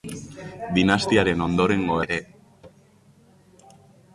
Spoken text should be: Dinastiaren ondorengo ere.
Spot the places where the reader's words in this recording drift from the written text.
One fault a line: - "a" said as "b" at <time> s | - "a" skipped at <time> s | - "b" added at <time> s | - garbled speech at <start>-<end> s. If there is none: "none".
none